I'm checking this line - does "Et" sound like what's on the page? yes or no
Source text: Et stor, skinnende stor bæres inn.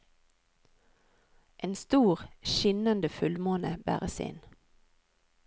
no